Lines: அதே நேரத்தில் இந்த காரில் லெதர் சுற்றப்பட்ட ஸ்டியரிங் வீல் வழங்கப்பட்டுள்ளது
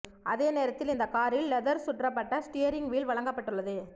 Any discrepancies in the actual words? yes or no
no